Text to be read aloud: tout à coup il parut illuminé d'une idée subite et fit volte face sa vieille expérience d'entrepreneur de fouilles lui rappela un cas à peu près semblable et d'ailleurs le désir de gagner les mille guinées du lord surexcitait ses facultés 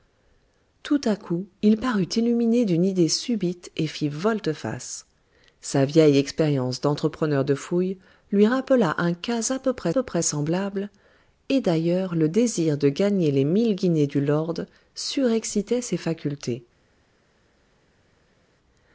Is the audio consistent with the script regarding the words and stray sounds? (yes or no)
no